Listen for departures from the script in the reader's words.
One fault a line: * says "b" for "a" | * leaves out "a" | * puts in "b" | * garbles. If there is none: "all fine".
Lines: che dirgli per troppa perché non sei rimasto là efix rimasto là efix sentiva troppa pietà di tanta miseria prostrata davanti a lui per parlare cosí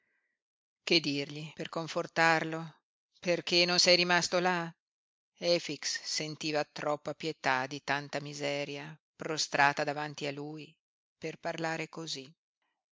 * says "confortarlo" for "troppa"
* leaves out "rimasto là efix"